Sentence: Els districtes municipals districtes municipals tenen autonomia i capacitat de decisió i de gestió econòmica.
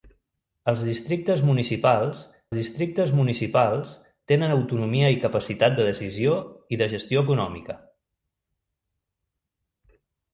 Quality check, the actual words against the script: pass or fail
pass